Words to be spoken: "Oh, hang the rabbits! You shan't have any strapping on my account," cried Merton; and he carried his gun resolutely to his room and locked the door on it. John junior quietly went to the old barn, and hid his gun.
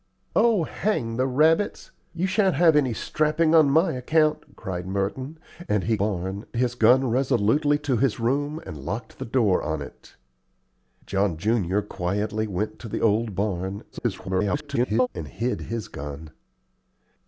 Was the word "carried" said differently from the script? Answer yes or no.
yes